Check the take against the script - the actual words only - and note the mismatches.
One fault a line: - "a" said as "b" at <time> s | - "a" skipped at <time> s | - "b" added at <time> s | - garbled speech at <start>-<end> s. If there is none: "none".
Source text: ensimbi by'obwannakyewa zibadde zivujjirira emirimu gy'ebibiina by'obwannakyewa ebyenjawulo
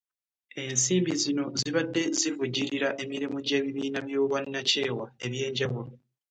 - "by'obwannakyewa" said as "zino" at 1.2 s